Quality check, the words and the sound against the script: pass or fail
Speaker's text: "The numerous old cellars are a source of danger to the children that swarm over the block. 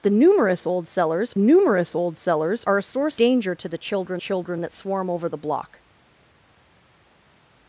fail